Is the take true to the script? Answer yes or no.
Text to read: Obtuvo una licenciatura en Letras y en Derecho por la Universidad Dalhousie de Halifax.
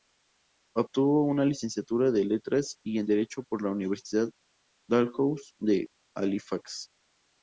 yes